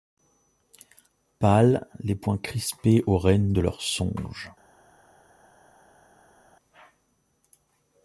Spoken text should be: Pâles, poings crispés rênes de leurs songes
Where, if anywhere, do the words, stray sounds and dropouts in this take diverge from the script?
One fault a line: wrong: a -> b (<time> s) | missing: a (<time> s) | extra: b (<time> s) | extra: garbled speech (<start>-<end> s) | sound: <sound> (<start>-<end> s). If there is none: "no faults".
extra: les (2.0 s)
extra: aux (3.0 s)